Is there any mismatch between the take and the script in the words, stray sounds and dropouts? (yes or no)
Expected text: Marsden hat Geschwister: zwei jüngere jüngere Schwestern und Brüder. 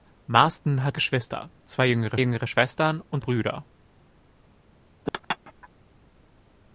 yes